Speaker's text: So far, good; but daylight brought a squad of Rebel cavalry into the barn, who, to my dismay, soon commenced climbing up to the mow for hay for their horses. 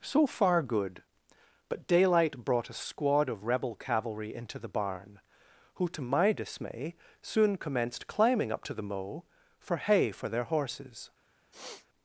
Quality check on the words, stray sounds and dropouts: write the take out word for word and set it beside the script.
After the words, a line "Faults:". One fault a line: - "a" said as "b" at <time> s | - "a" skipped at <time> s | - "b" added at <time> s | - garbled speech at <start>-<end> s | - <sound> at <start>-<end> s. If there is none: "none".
So far, good; but daylight brought a squad of Rebel cavalry into the barn, who, to my dismay, soon commenced climbing up to the mow for hay for their horses.
Faults:
- sniff at 11.5-11.9 s